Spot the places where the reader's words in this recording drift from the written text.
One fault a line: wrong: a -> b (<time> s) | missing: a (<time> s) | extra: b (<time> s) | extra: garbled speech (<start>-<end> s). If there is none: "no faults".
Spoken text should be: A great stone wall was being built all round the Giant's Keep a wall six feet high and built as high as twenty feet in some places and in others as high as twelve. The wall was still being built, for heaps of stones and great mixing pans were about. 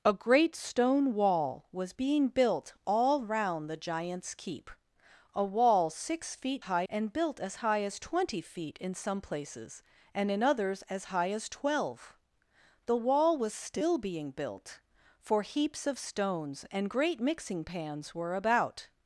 no faults